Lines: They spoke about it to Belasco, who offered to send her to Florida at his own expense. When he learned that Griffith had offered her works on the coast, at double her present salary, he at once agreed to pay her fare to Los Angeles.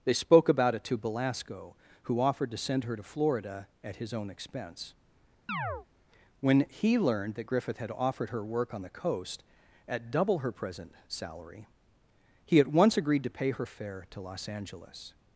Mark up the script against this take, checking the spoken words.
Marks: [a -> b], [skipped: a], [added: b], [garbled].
They spoke about it to Belasco, who offered to send her to Florida at his own expense. When he learned that Griffith had offered her [works -> work] on the coast, at double her present salary, he at once agreed to pay her fare to Los Angeles.